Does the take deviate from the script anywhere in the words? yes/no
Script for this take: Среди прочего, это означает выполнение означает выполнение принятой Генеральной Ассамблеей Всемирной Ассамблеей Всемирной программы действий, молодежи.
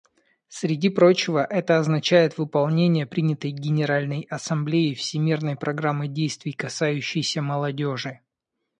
yes